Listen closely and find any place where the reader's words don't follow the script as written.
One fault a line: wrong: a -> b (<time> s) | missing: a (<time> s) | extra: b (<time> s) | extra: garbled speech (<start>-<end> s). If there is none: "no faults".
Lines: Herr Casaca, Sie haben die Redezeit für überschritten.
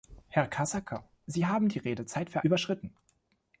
no faults